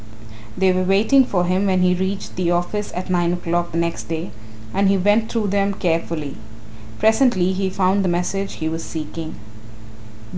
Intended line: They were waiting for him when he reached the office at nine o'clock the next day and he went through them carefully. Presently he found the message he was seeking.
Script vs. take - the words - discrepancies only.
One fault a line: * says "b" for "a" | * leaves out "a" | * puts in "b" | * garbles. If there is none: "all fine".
all fine